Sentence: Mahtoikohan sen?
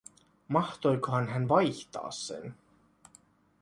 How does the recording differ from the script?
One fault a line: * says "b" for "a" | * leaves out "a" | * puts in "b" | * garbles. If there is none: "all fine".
* puts in "hän vaihtaa"